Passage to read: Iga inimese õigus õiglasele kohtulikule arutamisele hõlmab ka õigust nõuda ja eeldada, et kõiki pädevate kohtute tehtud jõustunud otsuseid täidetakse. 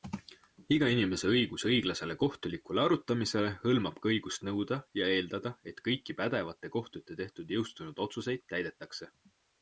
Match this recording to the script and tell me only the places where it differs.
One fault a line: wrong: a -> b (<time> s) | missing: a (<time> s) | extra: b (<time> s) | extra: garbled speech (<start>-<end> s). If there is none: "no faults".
no faults